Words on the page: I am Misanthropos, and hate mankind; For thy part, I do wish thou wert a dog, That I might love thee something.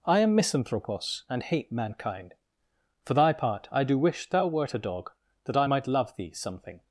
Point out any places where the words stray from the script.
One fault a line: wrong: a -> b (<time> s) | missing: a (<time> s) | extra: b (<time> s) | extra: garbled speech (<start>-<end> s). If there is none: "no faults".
no faults